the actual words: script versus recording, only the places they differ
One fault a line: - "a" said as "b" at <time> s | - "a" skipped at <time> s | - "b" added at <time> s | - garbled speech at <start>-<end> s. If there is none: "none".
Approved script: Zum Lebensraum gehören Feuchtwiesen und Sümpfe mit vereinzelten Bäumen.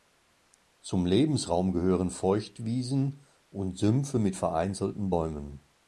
none